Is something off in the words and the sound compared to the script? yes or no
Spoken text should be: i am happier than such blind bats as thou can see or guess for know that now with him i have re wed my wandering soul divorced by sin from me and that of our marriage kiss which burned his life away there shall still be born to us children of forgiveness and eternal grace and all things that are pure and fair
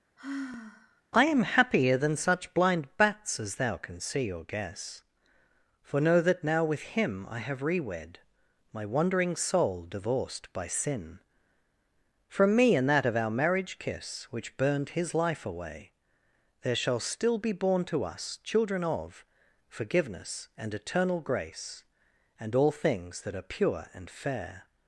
yes